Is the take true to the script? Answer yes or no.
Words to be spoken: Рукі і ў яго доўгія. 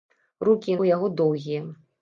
yes